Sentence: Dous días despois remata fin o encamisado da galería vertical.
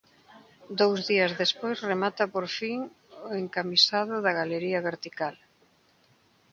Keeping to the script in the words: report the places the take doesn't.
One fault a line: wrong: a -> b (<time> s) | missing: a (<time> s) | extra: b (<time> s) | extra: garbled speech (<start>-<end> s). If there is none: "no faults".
extra: por (2.3 s)